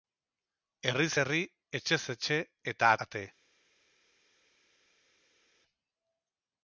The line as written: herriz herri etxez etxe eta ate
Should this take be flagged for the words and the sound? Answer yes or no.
no